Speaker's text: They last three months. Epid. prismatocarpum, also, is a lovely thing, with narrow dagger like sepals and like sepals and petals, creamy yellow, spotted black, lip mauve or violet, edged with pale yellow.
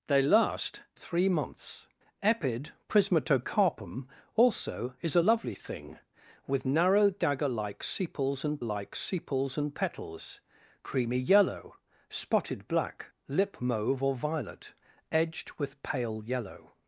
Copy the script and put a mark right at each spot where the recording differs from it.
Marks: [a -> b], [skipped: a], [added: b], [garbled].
They last three months. Epid. prismatocarpum, also, is a lovely thing, with narrow dagger like sepals and like sepals and petals, creamy yellow, spotted black, lip mauve or violet, edged with pale yellow.